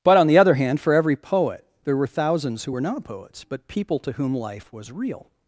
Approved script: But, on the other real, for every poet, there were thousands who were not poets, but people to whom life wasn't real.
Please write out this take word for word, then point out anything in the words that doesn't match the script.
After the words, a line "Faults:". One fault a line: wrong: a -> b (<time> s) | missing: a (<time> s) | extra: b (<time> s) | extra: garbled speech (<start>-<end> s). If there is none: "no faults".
But, on the other hand, for every poet, there were thousands who were not poets, but people to whom life was real.
Faults:
wrong: real -> hand (0.6 s)
wrong: wasn't -> was (4.7 s)